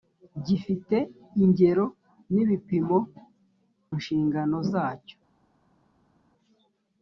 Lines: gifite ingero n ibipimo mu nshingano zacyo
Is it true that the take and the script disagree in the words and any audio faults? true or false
true